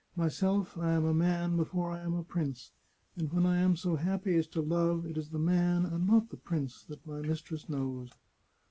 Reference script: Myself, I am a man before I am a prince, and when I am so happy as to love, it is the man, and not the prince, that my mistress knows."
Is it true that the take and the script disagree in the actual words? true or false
false